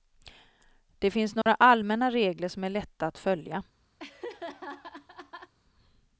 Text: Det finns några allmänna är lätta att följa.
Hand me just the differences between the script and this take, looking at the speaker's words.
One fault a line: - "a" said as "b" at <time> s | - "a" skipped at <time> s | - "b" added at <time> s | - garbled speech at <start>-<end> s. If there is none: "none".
- "regler som" added at 2.1 s